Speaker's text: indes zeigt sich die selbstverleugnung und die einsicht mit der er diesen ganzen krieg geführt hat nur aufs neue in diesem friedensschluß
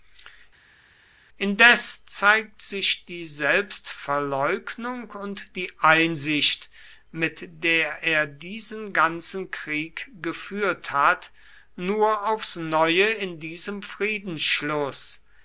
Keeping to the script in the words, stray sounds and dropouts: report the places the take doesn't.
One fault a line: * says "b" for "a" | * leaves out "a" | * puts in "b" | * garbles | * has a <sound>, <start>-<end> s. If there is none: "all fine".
all fine